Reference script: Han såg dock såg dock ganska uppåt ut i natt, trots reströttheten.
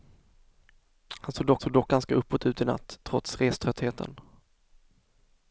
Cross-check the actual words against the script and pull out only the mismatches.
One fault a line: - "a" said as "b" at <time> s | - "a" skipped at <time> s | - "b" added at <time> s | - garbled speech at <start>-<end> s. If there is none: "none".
none